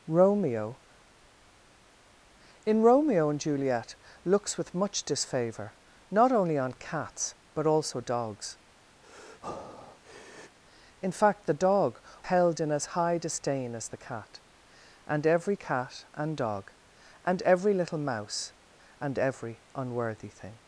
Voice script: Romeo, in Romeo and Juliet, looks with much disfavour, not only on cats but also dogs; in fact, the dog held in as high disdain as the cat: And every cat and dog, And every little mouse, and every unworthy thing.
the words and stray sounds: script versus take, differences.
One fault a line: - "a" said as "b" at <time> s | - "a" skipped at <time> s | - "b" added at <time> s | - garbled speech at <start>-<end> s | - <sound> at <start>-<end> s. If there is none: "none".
- breath at 9.0-10.6 s